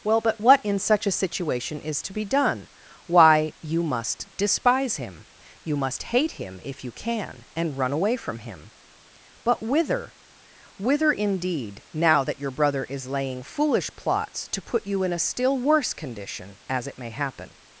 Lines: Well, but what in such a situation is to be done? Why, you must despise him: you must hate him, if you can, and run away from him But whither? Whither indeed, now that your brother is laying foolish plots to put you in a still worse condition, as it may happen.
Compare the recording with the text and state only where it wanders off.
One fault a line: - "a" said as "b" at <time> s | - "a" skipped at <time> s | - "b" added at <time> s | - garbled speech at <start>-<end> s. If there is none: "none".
none